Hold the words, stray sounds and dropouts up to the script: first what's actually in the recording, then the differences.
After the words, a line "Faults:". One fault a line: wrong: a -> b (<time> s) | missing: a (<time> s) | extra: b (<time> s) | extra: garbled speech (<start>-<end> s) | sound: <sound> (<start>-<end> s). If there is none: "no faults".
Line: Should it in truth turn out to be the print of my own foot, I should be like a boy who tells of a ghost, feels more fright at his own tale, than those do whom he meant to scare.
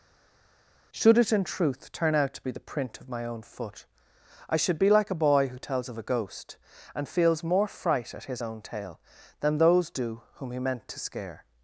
Should it in truth turn out to be the print of my own foot, I should be like a boy who tells of a ghost, and feels more fright at his own tale, than those do whom he meant to scare.
Faults:
extra: and (6.9 s)